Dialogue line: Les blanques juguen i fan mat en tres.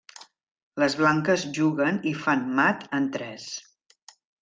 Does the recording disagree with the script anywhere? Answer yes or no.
no